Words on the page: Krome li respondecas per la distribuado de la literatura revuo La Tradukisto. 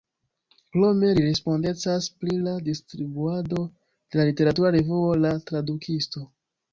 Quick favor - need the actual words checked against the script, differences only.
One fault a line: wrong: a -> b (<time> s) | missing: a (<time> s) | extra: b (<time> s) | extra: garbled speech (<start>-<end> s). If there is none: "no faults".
wrong: per -> pri (2.2 s)